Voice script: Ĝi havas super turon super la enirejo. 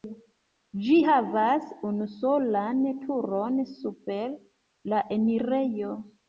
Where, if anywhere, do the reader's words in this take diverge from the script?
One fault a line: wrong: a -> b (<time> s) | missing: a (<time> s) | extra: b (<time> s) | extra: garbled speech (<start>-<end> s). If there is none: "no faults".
wrong: super -> unusolan (1.9 s)